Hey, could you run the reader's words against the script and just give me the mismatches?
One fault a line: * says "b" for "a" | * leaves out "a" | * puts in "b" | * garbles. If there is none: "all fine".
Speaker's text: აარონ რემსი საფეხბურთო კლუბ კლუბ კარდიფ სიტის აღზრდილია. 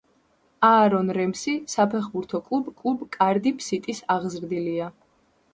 all fine